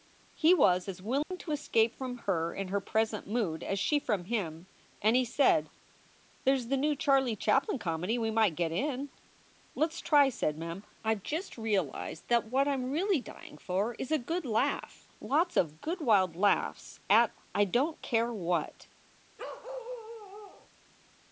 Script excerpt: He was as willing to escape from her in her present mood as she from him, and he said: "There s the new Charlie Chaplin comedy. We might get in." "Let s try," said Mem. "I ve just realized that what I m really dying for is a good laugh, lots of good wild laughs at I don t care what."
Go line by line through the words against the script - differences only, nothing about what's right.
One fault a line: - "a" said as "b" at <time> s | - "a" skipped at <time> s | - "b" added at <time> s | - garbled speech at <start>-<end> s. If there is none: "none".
none